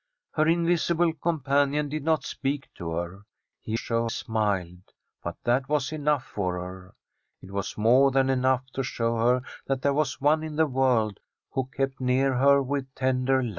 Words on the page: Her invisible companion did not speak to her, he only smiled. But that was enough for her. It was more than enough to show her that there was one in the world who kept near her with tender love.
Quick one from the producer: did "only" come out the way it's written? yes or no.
no